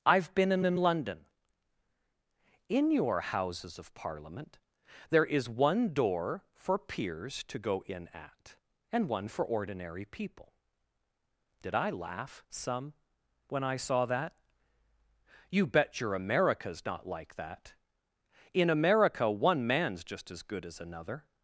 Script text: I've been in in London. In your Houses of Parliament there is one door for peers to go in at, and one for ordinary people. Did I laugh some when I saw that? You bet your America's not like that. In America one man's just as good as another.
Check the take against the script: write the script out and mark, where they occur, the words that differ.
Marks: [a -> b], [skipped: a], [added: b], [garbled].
I've been in in London. In your Houses of Parliament there is one door for peers to go in at, and one for ordinary people. Did I laugh some when I saw that? You bet your America's not like that. In America one man's just as good as another.